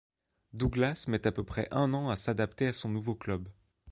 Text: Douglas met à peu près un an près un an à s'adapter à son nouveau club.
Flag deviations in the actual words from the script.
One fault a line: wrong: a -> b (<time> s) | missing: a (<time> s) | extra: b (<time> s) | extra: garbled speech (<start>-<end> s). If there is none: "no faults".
missing: près un an (2.1 s)